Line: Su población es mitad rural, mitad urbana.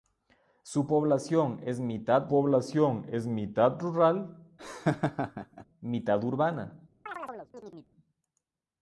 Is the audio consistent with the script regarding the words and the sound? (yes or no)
no